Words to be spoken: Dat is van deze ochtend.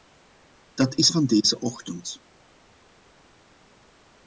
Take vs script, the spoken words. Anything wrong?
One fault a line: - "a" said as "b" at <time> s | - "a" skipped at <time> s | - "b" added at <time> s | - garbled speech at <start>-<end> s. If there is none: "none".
none